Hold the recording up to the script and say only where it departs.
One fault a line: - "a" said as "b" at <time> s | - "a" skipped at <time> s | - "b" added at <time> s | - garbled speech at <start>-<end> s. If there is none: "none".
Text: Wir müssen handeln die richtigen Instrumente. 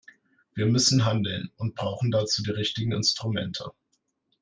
- "und brauchen dazu" added at 1.6 s